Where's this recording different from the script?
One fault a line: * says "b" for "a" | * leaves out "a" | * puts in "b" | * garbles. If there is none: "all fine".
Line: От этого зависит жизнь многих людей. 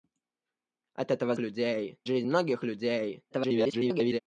* says "людей" for "зависит"
* garbles